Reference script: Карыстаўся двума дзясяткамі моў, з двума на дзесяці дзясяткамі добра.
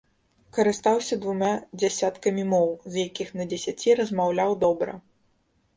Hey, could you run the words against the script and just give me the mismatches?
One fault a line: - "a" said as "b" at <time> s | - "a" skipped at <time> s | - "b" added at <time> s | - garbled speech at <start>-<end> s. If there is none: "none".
- "двума" said as "якіх" at 3.1 s
- "дзясяткамі" said as "размаўляў" at 4.0 s